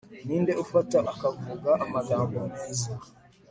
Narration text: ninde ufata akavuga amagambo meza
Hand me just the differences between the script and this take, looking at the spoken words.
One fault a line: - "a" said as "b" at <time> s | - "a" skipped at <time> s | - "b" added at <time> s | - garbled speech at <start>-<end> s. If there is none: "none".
none